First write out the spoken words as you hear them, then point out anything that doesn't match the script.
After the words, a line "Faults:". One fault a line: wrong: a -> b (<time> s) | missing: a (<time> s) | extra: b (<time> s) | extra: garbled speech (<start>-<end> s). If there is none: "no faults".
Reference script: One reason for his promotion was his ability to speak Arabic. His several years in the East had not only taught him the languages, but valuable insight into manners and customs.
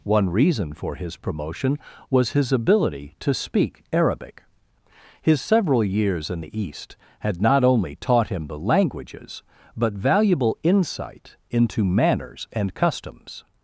One reason for his promotion was his ability to speak Arabic. His several years in the East had not only taught him the languages, but valuable insight into manners and customs.
Faults:
no faults